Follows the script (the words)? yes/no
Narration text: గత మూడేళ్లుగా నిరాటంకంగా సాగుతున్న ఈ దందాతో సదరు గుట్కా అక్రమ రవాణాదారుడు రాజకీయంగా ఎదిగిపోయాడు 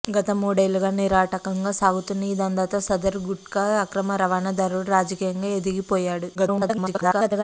no